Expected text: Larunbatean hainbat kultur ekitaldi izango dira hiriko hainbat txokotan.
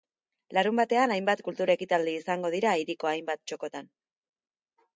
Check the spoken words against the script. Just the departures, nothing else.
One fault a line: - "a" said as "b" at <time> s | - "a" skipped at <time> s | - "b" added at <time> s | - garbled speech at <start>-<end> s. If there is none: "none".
none